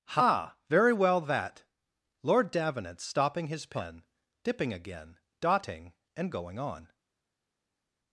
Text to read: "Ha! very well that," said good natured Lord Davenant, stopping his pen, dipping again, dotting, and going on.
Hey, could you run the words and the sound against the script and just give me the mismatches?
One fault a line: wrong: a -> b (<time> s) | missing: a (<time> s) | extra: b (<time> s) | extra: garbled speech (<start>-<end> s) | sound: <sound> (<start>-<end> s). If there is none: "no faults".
missing: said good natured (1.6 s)